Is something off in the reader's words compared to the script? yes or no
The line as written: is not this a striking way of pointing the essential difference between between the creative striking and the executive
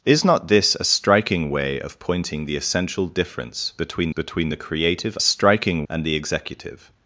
no